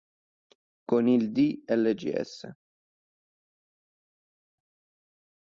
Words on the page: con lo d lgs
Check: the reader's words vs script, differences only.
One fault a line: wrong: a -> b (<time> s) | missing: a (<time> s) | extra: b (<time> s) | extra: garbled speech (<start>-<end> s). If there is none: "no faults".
wrong: lo -> il (1.1 s)